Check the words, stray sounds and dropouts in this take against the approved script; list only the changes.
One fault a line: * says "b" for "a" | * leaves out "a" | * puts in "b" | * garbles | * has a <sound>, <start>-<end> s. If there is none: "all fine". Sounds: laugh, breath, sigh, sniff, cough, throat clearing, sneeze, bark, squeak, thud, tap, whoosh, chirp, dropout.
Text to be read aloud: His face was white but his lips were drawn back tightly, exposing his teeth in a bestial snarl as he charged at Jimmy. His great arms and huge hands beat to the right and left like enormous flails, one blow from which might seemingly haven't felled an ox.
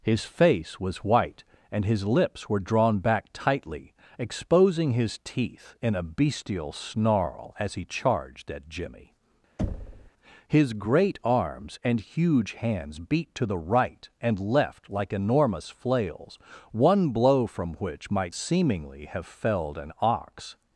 * says "and" for "but"
* has a thud, 9.6-10.1 s
* says "have" for "haven't"